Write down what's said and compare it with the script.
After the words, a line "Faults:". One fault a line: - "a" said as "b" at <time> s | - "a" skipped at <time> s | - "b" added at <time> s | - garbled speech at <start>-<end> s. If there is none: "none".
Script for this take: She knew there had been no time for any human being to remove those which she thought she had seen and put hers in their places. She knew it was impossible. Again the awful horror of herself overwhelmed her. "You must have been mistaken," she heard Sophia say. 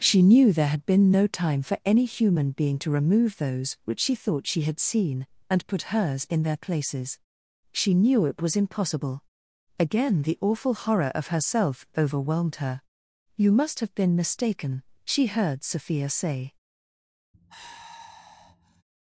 She knew there had been no time for any human being to remove those which she thought she had seen and put hers in their places. She knew it was impossible. Again the awful horror of herself overwhelmed her. "You must have been mistaken," she heard Sophia say.
Faults:
none